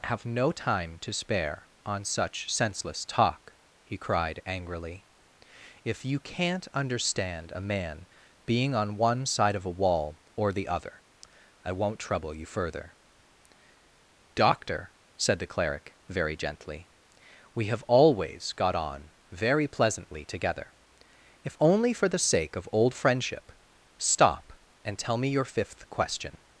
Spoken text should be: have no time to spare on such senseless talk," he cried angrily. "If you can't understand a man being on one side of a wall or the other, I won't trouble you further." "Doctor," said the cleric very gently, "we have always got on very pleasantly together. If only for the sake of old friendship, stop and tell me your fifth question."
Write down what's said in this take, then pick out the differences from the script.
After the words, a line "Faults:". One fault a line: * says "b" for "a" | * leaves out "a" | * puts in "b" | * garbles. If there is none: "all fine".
have no time to spare on such senseless talk," he cried angrily. "If you can't understand a man being on one side of a wall or the other, I won't trouble you further." "Doctor," said the cleric very gently, "we have always got on very pleasantly together. If only for the sake of old friendship, stop and tell me your fifth question."
Faults:
all fine